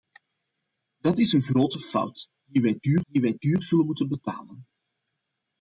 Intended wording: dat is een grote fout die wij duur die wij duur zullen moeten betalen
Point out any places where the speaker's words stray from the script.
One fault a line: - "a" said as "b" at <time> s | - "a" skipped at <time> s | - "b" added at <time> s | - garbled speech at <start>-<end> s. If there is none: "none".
none